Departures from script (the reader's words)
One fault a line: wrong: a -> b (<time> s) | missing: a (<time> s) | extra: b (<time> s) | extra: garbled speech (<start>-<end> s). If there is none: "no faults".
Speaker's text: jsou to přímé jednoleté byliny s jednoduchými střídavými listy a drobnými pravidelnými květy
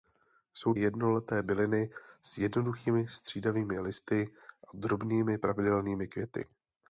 missing: to přímé (0.7 s)